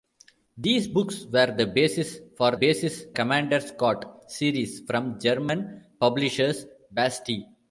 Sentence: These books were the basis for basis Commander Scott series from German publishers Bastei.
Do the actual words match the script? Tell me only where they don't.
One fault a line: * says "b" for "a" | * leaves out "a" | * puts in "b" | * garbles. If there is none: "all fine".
all fine